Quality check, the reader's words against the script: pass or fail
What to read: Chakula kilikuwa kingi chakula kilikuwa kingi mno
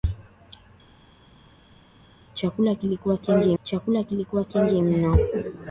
pass